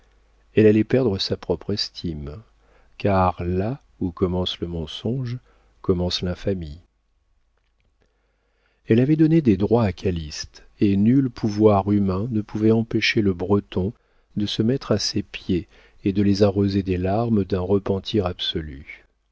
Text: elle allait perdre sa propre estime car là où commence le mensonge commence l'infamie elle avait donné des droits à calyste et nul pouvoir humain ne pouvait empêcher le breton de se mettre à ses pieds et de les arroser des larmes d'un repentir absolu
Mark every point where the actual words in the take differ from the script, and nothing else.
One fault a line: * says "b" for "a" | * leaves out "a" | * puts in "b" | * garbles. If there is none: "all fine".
all fine